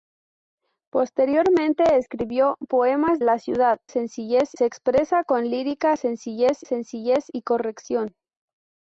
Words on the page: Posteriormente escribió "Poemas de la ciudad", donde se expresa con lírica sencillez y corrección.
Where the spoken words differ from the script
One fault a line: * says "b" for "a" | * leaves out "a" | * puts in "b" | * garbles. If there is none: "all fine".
* leaves out "de"
* says "sencillez" for "donde"
* puts in "sencillez"